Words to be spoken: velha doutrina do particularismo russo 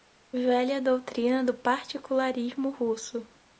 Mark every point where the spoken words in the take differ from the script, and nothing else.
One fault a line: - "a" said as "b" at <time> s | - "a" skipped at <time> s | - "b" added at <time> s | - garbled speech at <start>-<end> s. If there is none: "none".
none